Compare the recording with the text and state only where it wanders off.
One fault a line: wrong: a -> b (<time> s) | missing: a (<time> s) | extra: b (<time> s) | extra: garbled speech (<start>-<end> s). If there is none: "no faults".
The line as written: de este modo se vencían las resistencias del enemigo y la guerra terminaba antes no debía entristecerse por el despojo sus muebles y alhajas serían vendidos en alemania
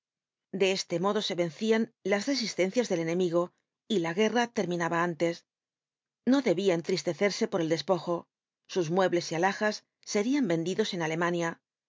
no faults